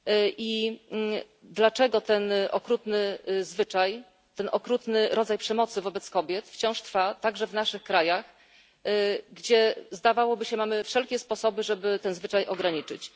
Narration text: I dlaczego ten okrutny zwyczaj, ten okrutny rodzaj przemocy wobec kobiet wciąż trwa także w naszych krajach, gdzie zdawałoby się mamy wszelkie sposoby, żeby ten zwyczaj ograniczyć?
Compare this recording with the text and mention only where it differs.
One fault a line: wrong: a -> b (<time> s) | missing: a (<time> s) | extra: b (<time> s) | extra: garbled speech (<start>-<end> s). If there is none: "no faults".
no faults